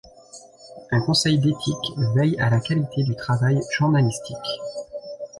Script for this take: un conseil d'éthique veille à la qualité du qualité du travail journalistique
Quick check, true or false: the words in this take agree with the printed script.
false